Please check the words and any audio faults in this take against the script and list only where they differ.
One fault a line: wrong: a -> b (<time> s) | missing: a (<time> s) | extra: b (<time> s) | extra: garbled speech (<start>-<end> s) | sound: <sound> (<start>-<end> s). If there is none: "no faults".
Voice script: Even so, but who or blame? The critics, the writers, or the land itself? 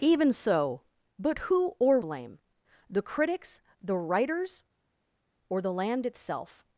no faults